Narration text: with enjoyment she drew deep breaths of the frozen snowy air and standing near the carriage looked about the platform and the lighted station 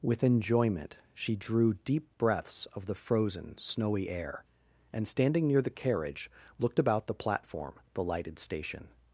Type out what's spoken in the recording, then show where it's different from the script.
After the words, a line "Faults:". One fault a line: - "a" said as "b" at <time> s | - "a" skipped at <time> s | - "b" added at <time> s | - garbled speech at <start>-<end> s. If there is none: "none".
with enjoyment she drew deep breaths of the frozen snowy air and standing near the carriage looked about the platform the lighted station
Faults:
- "and" skipped at 7.7 s